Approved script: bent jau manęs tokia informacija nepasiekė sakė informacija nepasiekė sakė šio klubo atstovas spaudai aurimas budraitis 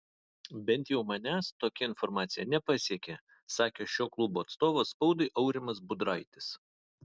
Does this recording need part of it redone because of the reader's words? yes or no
yes